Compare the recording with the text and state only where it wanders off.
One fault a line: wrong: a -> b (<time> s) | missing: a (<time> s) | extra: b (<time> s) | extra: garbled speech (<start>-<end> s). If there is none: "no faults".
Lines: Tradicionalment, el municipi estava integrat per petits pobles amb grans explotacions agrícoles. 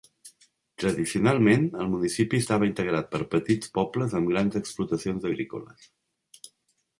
no faults